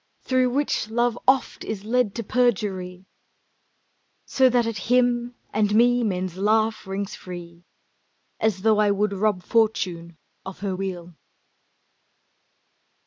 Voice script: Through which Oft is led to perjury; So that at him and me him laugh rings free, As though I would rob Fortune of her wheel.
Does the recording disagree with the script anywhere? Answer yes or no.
yes